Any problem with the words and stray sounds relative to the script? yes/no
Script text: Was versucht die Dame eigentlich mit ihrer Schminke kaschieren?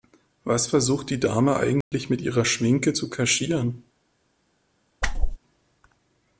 yes